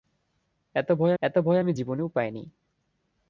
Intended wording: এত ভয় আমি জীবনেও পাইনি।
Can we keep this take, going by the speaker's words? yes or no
no